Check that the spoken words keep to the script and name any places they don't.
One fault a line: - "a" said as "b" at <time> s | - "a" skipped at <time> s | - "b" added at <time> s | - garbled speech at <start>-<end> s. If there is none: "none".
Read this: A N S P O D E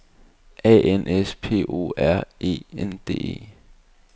- "R E N" added at 2.0 s